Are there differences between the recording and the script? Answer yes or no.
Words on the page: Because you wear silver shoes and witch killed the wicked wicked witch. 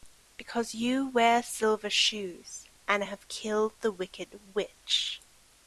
yes